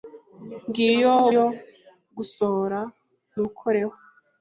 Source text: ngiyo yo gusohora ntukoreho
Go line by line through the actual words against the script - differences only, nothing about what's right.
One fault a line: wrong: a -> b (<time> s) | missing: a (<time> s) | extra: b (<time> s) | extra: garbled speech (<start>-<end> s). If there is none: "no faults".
no faults